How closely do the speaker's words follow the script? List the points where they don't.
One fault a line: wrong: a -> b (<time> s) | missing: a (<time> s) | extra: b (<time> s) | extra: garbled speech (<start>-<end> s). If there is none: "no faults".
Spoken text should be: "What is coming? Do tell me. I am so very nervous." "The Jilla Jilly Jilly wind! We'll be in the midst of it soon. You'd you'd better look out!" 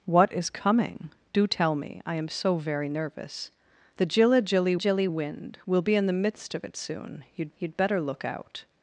no faults